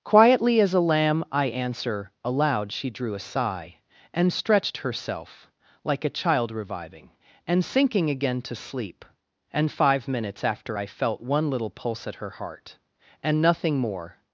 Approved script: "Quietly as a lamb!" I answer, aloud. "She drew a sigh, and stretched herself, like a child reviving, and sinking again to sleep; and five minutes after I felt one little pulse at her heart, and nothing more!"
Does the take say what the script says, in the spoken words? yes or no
yes